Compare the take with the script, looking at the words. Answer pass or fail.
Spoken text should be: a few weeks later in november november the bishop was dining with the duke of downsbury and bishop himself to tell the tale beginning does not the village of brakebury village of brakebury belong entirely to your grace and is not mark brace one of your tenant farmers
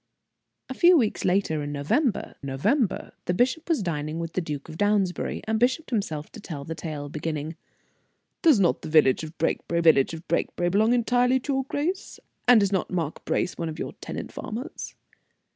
pass